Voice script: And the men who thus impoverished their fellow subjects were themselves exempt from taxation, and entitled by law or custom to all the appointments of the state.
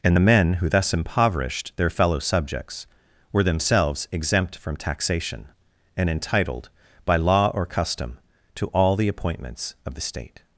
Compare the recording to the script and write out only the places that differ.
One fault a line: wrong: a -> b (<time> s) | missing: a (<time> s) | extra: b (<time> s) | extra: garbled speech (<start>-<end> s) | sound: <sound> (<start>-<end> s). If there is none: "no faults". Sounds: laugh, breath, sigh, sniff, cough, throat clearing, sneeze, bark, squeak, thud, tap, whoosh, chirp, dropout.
no faults